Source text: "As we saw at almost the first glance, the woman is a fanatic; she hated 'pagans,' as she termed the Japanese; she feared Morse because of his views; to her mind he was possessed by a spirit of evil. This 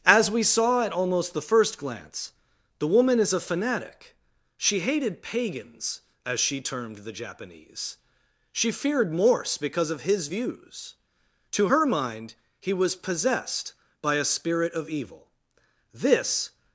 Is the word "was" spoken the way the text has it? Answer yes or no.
yes